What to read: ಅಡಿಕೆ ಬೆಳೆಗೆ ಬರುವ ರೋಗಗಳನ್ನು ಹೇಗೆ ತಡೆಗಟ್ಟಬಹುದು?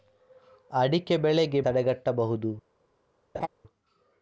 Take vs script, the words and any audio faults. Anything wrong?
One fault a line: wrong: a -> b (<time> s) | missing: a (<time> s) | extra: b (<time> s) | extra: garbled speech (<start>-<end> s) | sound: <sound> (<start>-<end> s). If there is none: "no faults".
missing: ಬರುವ ರೋಗಗಳನ್ನು ಹೇಗೆ (1.6 s)
sound: laugh (3.3-3.5 s)